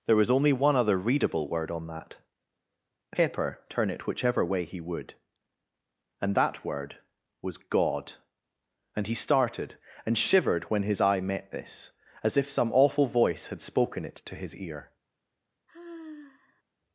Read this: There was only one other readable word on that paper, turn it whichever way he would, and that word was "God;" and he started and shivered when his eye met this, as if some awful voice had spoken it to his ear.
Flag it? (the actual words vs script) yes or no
yes